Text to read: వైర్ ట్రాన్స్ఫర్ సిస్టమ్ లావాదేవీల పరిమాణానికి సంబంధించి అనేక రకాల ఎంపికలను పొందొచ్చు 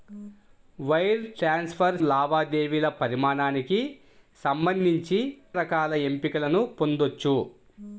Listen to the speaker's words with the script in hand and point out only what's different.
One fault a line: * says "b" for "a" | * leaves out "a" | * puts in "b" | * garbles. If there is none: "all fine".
* leaves out "సిస్టమ్"
* leaves out "అనేక"